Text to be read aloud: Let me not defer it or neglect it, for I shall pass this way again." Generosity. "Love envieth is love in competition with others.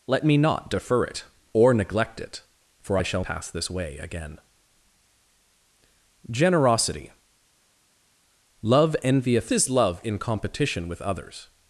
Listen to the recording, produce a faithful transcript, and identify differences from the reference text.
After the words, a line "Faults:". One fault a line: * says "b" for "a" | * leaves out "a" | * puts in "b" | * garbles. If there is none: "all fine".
Let me not defer it or neglect it, for I shall pass this way again." Generosity. "Love envieth is love in competition with others.
Faults:
all fine